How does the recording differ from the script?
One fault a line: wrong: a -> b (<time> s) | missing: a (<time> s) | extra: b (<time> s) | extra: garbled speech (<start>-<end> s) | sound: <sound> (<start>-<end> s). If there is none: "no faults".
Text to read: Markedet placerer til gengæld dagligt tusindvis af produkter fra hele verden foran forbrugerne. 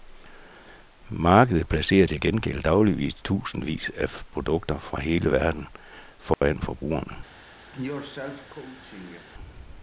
sound: dropout (6.3-6.4 s)
sound: cough (7.7-9.3 s)